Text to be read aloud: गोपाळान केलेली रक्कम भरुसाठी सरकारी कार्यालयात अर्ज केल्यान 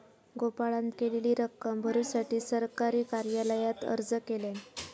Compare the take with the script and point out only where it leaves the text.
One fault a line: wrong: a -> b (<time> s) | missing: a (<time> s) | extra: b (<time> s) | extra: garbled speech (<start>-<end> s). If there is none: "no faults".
no faults